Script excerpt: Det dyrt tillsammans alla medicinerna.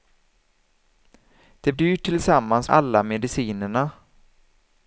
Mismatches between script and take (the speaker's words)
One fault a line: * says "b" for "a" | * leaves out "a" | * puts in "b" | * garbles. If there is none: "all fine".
all fine